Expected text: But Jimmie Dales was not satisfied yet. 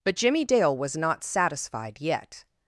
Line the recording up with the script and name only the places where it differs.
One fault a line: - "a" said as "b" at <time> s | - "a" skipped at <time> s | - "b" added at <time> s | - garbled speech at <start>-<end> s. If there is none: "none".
- "Dales" said as "Dale" at 0.4 s